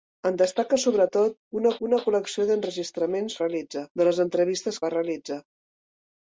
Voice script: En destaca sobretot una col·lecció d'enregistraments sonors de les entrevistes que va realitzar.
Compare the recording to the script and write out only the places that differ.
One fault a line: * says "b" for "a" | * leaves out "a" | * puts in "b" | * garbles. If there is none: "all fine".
* puts in "una"
* says "realitzar" for "sonors"
* leaves out "que"